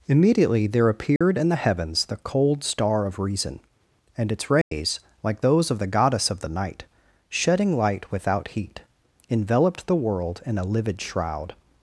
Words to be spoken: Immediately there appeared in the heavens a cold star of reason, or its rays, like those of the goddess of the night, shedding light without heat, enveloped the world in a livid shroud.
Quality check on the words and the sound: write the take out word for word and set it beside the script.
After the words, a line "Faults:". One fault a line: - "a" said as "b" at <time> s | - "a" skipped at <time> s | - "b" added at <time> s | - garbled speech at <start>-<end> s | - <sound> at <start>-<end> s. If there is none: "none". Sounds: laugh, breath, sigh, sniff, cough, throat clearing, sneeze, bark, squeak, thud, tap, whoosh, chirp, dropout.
Immediately there appeared in the heavens the cold star of reason, and its rays, like those of the goddess of the night, shedding light without heat, enveloped the world in a livid shroud.
Faults:
- dropout at 1.2-1.2 s
- "a" said as "the" at 2.0 s
- "or" said as "and" at 4.2 s
- dropout at 4.6-4.7 s